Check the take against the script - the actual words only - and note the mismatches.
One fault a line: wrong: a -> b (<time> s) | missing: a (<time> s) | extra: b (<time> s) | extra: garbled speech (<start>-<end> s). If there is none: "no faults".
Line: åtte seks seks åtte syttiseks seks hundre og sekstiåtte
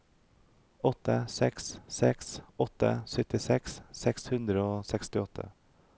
no faults